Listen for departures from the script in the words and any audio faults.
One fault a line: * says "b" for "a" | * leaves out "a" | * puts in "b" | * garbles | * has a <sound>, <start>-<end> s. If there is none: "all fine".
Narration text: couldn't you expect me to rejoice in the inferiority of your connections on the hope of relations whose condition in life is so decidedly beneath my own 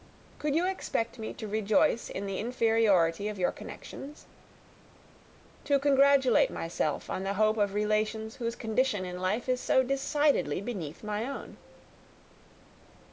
* says "could" for "couldn't"
* puts in "to congratulate myself"